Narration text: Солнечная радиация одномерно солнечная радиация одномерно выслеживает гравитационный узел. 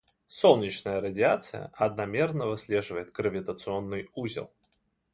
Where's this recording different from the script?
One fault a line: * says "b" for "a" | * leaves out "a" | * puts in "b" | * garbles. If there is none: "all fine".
* leaves out "солнечная радиация одномерно"